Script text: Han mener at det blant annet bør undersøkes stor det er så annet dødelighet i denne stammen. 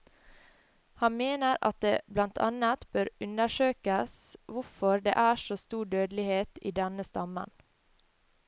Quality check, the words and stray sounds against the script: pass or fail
fail